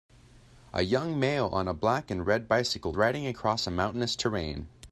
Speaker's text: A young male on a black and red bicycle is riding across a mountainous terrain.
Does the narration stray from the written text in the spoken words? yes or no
yes